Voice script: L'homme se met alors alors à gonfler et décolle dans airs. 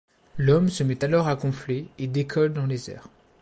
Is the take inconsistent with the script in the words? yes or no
yes